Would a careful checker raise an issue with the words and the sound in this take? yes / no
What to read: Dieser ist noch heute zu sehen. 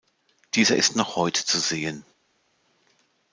no